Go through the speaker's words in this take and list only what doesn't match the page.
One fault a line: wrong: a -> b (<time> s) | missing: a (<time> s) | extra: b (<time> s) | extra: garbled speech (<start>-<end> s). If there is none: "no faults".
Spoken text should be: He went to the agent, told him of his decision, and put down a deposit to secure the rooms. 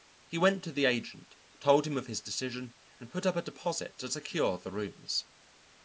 wrong: down -> up (3.3 s)